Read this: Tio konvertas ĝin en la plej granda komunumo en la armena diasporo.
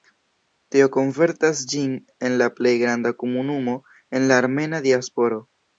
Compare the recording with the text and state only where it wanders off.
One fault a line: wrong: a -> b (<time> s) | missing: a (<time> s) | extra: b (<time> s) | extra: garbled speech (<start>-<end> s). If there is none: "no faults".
no faults